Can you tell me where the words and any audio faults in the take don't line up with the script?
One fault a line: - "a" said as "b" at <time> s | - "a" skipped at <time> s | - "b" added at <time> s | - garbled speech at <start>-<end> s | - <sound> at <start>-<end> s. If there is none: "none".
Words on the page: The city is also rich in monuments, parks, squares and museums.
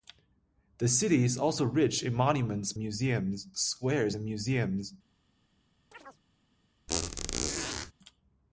- "parks" said as "museums" at 2.8 s
- chirp at 5.9-6.2 s
- squeak at 6.9-7.9 s